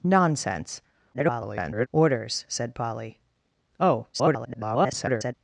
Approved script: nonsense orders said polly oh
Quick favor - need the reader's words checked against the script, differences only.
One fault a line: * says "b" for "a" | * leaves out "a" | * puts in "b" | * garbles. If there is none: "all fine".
* garbles
* garbles